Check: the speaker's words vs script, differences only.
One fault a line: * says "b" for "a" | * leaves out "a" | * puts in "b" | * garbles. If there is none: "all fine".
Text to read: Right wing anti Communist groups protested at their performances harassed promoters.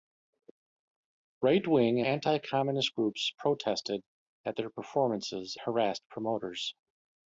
all fine